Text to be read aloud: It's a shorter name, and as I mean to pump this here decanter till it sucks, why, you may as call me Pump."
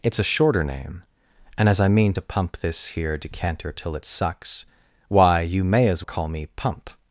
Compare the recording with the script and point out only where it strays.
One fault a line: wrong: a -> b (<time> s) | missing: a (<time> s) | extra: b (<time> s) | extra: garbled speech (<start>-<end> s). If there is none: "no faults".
no faults